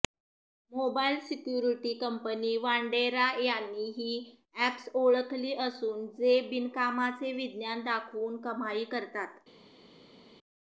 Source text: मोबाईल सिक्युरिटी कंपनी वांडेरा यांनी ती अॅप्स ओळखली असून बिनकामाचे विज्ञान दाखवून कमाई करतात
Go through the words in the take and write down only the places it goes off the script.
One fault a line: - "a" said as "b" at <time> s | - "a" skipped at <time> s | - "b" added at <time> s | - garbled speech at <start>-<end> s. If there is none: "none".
- "ती" said as "ही" at 4.0 s
- "जे" added at 6.2 s